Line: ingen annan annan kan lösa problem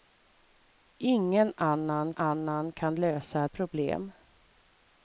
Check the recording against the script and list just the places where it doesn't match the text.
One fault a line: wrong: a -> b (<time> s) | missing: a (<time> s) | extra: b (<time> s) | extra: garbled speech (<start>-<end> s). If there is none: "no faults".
no faults